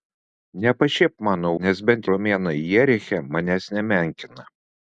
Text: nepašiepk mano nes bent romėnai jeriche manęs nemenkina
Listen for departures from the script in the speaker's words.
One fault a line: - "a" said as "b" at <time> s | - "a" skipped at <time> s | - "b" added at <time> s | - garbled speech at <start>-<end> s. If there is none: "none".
none